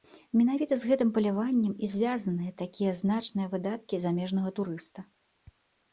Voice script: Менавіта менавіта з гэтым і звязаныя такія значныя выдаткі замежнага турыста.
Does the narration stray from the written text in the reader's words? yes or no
yes